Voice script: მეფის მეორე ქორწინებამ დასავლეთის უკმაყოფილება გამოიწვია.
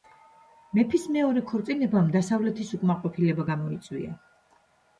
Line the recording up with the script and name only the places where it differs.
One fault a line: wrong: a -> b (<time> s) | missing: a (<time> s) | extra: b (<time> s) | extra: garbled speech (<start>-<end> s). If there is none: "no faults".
no faults